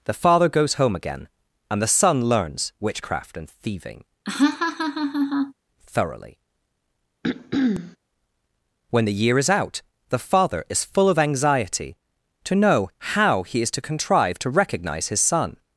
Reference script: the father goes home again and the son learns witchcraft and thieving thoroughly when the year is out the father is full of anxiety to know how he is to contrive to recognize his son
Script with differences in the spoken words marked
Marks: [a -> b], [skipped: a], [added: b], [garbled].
the father goes home again and the son learns witchcraft and thieving thoroughly when the year is out the father is full of anxiety to know how he is to contrive to recognize his son